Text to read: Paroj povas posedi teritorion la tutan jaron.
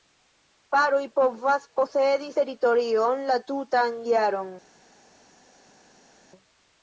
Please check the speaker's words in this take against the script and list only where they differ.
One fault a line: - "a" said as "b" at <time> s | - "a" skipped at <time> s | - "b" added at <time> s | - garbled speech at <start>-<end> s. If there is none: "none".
none